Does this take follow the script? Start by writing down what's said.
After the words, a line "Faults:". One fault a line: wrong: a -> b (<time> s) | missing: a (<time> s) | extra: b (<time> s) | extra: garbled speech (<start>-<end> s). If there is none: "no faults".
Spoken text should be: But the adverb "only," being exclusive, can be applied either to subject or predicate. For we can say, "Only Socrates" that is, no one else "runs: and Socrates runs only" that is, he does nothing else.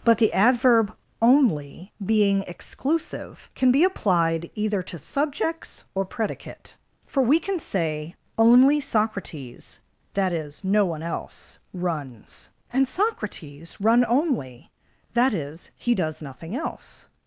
But the adverb "only," being exclusive, can be applied either to subjects or predicate. For we can say, "Only Socrates" that is, no one else "runs: and Socrates run only" that is, he does nothing else.
Faults:
wrong: subject -> subjects (5.0 s)
wrong: runs -> run (13.8 s)